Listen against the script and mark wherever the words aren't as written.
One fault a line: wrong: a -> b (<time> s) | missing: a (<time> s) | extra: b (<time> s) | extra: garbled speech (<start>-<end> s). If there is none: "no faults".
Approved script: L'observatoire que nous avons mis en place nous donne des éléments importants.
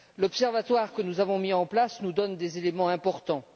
no faults